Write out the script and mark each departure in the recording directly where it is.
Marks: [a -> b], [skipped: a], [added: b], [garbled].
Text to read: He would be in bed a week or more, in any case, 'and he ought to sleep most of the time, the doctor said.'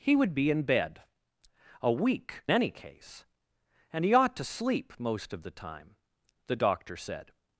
He would be in bed a week [skipped: or more, in] any case, 'and he ought to sleep most of the time, the doctor said.'